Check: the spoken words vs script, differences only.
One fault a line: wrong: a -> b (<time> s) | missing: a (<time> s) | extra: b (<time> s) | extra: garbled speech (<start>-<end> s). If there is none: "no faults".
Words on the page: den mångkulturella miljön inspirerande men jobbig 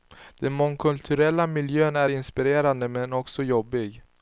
extra: är (1.9 s)
extra: också (3.1 s)